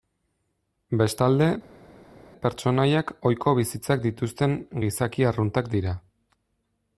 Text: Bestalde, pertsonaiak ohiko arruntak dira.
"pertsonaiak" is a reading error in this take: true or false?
false